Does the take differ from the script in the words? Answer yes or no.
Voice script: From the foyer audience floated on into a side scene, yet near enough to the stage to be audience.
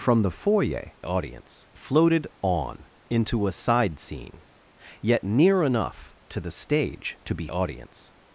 no